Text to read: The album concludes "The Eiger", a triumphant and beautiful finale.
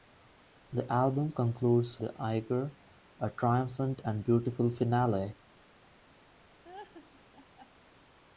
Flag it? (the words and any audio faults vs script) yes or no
yes